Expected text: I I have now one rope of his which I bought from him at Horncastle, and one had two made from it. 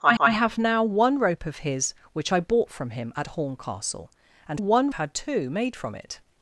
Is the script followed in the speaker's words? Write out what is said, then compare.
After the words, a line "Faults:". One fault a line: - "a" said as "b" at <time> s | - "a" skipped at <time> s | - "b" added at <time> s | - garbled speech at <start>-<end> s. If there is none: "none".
I I have now one rope of his which I bought from him at Horncastle, and one had two made from it.
Faults:
none